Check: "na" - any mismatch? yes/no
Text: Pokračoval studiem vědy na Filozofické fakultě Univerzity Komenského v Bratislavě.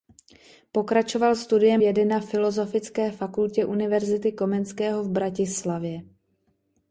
no